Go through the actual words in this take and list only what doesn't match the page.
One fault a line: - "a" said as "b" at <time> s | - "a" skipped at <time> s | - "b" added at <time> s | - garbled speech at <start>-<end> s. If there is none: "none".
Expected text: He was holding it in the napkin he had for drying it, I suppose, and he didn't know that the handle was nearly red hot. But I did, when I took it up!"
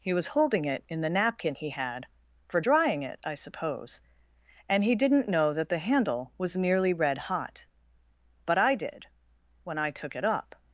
none